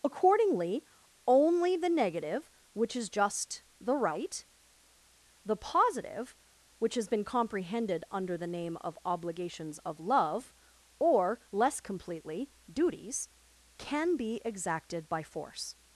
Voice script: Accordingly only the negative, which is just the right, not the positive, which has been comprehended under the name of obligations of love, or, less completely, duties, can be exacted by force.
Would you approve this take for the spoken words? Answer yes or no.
no